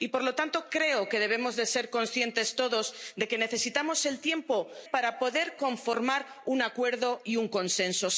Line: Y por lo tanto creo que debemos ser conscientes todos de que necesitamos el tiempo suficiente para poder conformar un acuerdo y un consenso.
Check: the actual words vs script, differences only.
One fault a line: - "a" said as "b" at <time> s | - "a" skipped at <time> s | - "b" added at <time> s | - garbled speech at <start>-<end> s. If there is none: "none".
- "suficiente" skipped at 4.7 s